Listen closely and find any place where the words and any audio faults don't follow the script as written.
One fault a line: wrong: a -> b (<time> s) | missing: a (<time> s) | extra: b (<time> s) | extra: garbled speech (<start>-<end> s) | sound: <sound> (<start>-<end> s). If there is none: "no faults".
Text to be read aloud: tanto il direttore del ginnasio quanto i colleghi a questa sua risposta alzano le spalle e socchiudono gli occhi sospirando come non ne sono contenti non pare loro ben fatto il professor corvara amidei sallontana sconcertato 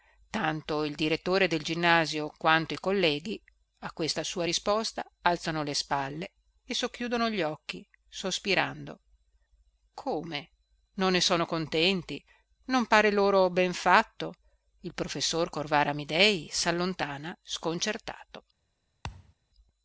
sound: thud (19.0-19.3 s)